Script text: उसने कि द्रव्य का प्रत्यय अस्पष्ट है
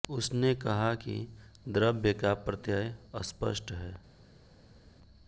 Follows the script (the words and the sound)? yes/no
no